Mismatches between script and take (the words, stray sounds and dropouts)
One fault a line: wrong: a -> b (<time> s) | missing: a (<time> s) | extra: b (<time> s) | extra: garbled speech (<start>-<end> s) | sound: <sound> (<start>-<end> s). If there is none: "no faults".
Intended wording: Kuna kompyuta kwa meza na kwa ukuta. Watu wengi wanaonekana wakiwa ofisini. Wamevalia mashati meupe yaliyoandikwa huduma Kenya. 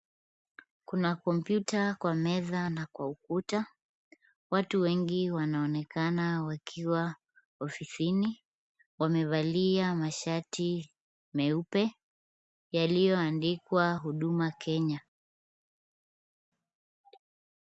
no faults